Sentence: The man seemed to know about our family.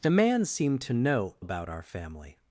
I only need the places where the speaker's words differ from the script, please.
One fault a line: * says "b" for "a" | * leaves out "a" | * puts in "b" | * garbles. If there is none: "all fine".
all fine